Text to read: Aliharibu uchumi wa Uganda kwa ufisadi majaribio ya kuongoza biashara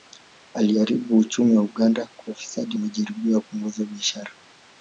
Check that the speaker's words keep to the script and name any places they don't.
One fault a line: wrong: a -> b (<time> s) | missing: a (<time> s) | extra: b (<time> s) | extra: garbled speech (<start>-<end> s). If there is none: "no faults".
no faults